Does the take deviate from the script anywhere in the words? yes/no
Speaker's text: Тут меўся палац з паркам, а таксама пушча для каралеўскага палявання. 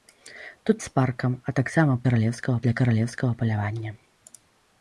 yes